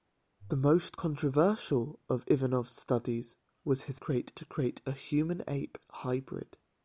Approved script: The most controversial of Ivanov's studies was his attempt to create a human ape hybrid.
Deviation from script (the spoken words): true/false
true